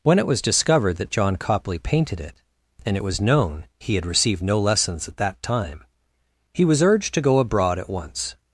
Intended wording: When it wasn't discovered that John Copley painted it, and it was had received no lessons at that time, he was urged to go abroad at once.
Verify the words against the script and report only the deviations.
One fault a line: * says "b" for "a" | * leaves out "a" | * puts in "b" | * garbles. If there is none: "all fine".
* says "was" for "wasn't"
* puts in "known he"